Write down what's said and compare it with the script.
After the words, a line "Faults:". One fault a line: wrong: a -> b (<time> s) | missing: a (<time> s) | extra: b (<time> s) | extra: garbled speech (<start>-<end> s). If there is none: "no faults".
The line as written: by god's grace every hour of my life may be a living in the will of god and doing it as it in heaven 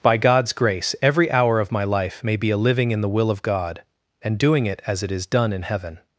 by god's grace every hour of my life may be a living in the will of god and doing it as it is done in heaven
Faults:
extra: is done (5.1 s)